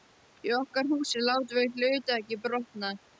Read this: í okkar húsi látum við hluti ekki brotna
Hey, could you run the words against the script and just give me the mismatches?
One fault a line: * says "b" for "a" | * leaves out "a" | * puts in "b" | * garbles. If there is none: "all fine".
all fine